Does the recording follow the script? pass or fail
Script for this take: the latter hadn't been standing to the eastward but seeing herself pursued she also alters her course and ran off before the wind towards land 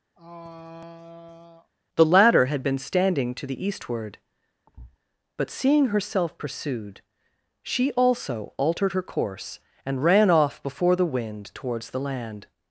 fail